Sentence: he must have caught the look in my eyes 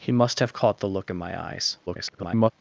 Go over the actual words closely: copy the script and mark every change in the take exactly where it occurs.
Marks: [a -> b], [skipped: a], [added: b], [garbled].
he must have caught the look in my eyes [garbled]